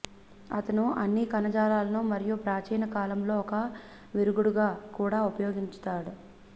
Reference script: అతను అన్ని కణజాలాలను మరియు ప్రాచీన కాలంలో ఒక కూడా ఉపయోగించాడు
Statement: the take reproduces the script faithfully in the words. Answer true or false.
false